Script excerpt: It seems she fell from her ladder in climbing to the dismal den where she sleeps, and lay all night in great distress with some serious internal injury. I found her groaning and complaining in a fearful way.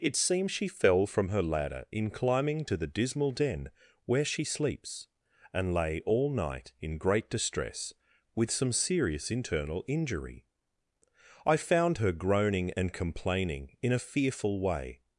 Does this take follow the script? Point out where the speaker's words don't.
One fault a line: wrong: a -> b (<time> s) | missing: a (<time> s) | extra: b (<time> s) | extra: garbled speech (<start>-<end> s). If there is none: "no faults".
no faults